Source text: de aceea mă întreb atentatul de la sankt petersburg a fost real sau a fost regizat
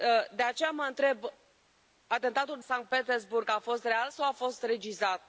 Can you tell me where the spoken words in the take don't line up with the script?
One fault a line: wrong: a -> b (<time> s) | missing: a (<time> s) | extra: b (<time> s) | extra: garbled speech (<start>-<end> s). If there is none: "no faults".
missing: de la (2.6 s)